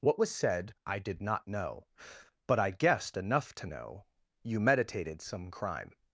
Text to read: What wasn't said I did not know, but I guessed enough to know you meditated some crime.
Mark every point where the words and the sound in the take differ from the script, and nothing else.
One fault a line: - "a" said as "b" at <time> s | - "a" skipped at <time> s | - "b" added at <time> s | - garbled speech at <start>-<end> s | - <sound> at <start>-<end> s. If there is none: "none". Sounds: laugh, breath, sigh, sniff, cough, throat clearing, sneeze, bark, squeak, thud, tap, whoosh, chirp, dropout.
- "wasn't" said as "was" at 0.2 s